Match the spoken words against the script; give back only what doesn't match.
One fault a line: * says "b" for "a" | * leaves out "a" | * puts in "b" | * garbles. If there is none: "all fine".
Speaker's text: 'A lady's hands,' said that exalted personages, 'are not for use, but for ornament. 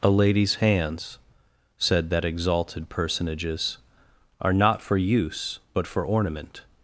all fine